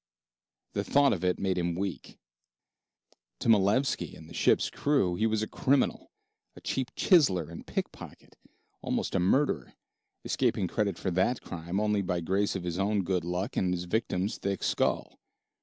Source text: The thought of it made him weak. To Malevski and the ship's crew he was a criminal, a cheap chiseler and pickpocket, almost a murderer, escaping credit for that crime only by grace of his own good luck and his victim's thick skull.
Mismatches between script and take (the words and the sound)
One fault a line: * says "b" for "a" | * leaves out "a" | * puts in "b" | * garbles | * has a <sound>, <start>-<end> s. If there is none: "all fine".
all fine